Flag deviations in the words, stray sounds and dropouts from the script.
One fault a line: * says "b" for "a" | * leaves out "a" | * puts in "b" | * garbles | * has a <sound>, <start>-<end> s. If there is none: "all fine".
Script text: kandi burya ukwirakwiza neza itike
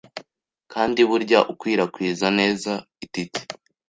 all fine